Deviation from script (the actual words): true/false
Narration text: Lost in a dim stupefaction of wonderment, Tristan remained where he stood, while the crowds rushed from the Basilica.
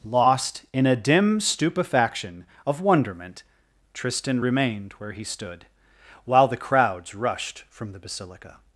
false